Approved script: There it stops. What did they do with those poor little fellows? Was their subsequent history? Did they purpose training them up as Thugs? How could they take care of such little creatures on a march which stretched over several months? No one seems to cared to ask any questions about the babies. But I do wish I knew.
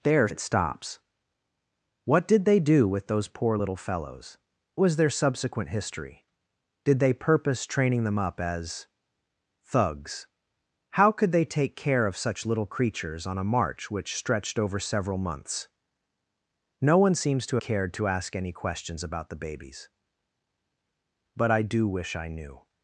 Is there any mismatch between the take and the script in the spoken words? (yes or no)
no